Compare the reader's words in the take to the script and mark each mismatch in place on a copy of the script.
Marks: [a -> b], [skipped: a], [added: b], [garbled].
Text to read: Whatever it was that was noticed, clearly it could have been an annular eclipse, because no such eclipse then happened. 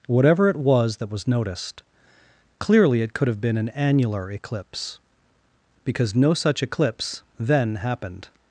Whatever it was that was noticed, clearly it could have been an annular eclipse, because no such eclipse then happened.